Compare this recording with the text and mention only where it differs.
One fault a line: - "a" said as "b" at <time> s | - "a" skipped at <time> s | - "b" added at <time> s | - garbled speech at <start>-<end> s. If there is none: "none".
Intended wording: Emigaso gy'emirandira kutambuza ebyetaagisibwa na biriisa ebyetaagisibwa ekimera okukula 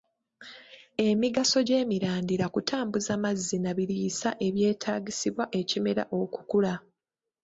- "ebyetaagisibwa" said as "mazzi" at 3.2 s